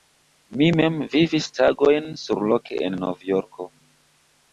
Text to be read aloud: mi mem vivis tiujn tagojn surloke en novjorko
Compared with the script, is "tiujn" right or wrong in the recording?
wrong